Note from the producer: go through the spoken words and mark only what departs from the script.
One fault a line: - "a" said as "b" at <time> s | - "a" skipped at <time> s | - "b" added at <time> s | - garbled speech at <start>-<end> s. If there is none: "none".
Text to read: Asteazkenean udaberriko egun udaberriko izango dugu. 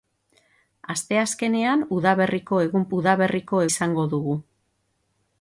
none